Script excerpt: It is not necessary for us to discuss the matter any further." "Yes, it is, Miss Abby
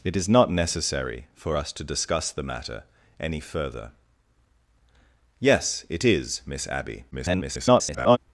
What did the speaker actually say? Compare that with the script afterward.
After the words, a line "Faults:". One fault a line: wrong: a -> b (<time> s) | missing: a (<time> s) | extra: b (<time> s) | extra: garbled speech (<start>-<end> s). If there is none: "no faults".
It is not necessary for us to discuss the matter any further." "Yes, it is, Miss Abby [garbled]
Faults:
extra: garbled speech (7.1-8.2 s)